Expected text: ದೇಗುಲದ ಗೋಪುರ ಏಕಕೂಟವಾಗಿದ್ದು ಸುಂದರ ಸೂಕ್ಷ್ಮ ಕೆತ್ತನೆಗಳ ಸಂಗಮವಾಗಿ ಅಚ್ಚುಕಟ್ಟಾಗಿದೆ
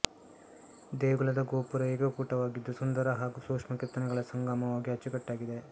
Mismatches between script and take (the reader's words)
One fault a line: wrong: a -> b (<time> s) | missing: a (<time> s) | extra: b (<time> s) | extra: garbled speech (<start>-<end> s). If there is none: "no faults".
extra: ಹಾಗೂ (3.2 s)